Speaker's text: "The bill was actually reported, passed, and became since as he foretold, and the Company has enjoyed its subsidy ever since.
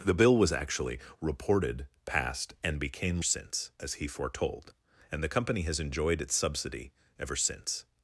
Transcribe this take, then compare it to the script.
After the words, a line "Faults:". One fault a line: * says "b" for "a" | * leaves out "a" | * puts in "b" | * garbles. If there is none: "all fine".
"The bill was actually reported, passed, and became since as he foretold, and the Company has enjoyed its subsidy ever since.
Faults:
all fine